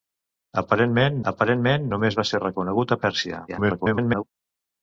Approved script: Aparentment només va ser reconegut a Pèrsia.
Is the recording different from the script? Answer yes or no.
yes